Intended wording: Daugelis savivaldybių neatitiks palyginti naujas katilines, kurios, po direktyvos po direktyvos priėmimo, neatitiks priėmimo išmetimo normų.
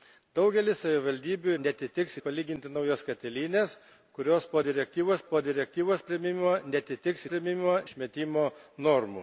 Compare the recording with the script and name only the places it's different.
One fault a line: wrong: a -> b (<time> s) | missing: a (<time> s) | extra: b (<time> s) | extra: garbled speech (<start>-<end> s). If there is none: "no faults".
no faults